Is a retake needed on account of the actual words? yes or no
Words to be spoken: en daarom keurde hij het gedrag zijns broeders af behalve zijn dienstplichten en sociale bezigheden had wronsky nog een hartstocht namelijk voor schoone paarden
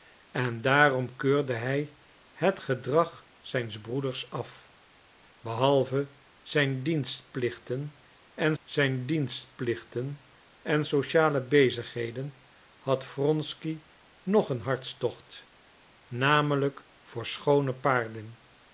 yes